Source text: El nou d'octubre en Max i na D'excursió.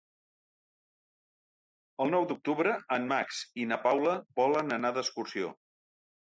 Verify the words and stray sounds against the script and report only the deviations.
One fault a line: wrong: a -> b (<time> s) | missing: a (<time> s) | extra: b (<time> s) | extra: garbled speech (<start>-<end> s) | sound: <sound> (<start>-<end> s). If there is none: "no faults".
extra: Paula volen anar (3.9 s)